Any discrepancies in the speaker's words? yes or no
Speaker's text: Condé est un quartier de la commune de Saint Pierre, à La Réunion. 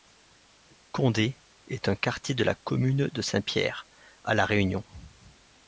no